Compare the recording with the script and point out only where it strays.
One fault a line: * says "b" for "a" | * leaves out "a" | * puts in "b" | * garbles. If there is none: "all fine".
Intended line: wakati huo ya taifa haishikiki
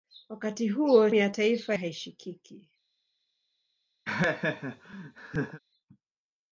all fine